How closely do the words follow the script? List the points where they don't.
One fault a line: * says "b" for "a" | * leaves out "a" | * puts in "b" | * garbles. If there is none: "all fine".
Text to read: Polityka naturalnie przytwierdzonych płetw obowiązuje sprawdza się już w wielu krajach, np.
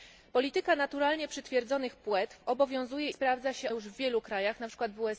all fine